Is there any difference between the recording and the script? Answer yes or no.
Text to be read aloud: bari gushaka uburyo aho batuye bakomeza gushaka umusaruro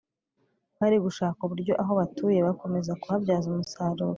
yes